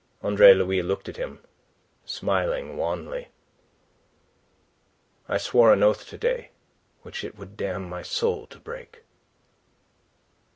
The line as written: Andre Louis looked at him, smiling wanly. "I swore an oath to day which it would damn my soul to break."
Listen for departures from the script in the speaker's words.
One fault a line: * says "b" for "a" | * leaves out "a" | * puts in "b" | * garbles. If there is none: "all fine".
all fine